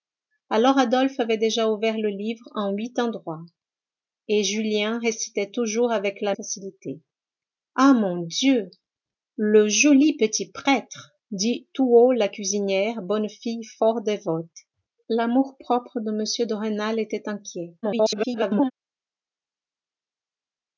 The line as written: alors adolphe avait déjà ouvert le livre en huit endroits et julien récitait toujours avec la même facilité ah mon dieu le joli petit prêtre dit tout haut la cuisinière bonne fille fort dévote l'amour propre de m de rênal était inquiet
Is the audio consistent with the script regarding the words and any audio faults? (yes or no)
no